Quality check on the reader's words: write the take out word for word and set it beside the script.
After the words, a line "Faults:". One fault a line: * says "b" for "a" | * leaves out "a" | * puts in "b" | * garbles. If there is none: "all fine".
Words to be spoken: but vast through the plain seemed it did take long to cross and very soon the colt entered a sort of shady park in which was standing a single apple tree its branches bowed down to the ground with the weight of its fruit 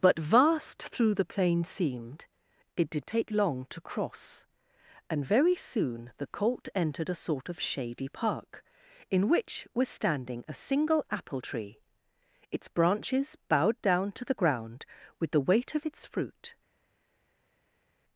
but vast through the plain seemed it did take long to cross and very soon the colt entered a sort of shady park in which was standing a single apple tree its branches bowed down to the ground with the weight of its fruit
Faults:
all fine